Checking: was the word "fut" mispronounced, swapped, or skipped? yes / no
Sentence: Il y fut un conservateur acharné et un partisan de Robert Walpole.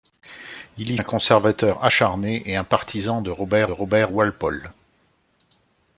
yes